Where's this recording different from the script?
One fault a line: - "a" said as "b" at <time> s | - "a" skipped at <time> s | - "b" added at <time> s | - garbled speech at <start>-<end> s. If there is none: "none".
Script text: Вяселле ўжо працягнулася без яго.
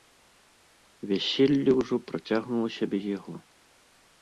none